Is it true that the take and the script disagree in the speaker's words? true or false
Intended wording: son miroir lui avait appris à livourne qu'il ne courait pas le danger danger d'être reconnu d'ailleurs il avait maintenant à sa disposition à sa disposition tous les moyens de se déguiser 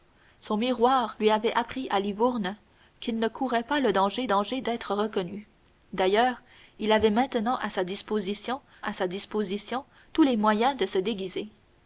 false